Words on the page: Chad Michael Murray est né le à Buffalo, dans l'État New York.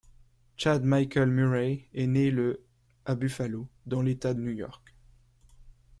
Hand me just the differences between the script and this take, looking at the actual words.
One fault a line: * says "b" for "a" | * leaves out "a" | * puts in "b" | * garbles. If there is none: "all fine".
all fine